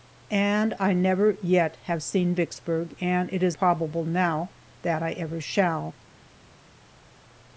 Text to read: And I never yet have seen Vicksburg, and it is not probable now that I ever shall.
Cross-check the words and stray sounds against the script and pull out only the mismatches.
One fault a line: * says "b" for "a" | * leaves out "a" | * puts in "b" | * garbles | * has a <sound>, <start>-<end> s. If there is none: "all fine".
* leaves out "not"